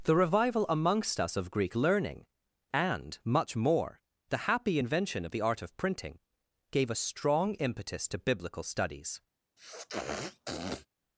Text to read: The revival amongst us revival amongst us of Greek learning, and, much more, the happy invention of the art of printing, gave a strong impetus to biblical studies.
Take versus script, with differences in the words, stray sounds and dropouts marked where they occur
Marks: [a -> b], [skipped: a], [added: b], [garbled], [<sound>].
The revival amongst us [skipped: revival amongst us] of Greek learning, and, much more, the happy invention of the art of printing, gave a strong impetus to biblical studies. [sniff]